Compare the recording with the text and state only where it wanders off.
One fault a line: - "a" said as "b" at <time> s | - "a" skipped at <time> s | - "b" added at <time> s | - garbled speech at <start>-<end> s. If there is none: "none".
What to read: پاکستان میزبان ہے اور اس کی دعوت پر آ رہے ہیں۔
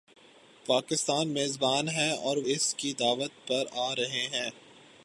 none